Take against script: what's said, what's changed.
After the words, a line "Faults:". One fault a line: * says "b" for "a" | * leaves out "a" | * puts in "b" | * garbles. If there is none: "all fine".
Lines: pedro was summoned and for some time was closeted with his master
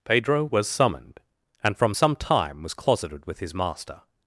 pedro was summoned and from some time was closeted with his master
Faults:
* says "from" for "for"